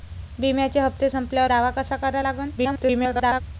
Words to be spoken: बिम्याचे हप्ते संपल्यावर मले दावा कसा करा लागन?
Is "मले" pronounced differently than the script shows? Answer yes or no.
yes